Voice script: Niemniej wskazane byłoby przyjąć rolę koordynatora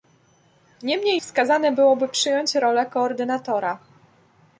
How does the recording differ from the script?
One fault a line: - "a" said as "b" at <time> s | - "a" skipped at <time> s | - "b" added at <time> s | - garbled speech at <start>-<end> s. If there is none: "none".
none